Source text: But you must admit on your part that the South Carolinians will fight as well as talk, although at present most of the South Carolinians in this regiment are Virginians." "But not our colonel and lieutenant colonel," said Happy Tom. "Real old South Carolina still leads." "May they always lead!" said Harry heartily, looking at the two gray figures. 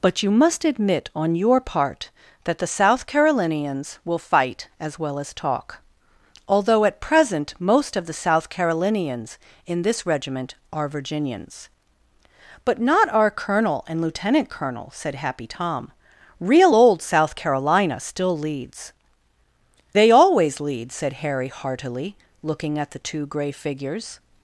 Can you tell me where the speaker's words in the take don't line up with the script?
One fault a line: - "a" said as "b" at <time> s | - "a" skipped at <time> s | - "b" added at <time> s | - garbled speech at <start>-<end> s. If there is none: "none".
- "May" skipped at 18.9 s